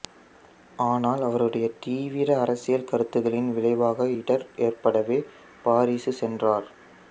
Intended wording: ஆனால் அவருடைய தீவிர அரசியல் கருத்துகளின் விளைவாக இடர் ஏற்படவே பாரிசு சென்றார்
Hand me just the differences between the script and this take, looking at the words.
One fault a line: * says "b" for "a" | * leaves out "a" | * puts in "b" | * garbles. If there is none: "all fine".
all fine